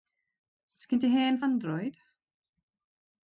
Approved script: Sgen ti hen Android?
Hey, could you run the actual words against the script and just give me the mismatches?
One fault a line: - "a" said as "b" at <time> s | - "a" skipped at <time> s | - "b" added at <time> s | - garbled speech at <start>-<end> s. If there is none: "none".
none